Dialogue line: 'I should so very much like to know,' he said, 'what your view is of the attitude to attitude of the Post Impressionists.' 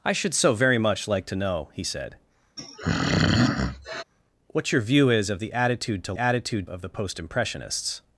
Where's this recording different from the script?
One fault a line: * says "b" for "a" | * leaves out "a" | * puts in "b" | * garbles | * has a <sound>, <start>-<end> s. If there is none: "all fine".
* has a throat clearing, 2.6-4.0 s